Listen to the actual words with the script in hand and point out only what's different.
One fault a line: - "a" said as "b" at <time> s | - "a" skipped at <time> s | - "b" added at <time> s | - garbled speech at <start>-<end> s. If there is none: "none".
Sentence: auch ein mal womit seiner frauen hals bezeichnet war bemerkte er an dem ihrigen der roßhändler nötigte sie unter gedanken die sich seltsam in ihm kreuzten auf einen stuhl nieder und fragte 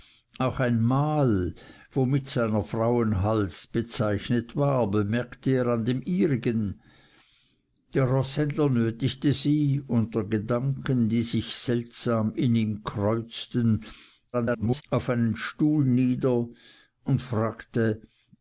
- garbled speech at 14.3-14.8 s